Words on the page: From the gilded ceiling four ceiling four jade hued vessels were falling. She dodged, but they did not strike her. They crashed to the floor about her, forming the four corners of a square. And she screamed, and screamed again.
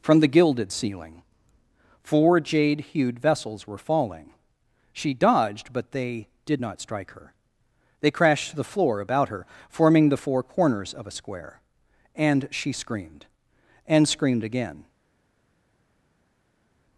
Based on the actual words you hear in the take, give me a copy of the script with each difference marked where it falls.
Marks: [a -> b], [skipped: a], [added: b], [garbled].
From the gilded ceiling four [skipped: ceiling four] jade hued vessels were falling. She dodged, but they did not strike her. They crashed to the floor about her, forming the four corners of a square. And she screamed, and screamed again.